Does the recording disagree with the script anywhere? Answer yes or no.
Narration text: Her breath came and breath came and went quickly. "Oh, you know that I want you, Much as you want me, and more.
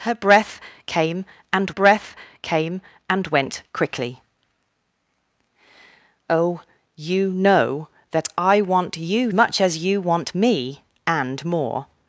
no